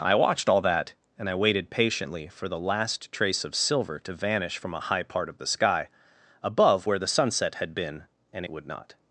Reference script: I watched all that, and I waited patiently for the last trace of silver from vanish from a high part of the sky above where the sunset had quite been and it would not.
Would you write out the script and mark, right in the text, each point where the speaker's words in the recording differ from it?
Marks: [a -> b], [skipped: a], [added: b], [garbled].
I watched all that, and I waited patiently for the last trace of silver [from -> to] vanish from a high part of the sky above where the sunset had [skipped: quite] been and it would not.